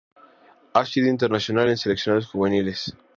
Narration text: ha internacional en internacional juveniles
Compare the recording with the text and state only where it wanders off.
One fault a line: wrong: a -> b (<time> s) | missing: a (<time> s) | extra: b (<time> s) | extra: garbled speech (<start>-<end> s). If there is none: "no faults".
extra: sido (0.8 s)
wrong: internacional -> seleccionados (1.8 s)